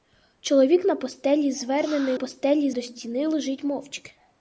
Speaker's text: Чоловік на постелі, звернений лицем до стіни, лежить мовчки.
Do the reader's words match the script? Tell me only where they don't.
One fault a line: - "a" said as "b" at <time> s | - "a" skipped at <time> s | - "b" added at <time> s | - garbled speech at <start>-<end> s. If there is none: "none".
- "лицем" said as "постелі" at 2.1 s